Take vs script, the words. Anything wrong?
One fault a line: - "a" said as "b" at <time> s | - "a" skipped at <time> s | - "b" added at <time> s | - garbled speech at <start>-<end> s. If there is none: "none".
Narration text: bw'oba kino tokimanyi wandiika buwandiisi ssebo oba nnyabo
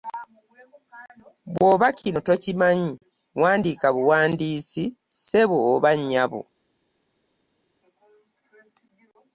none